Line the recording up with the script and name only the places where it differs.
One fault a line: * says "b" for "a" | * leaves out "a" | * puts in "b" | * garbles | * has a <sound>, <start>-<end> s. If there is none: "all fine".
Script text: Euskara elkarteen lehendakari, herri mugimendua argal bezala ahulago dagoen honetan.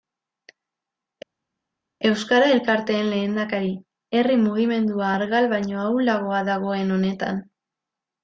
* says "baino" for "bezala"